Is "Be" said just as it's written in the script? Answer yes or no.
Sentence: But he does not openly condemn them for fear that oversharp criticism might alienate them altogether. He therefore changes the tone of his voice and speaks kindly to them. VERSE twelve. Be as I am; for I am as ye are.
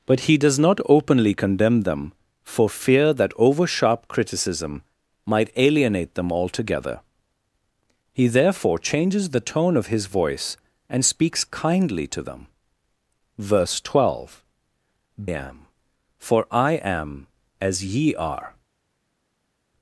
no